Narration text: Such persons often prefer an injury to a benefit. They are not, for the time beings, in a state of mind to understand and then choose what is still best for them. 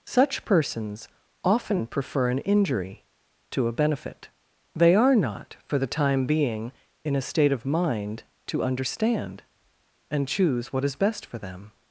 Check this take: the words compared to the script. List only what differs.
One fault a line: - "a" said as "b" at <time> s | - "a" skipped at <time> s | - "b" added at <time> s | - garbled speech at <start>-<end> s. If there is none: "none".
- "beings" said as "being" at 6.2 s
- "then" skipped at 10.3 s
- "still" skipped at 10.9 s